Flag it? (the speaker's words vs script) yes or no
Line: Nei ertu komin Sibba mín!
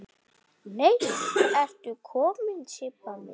no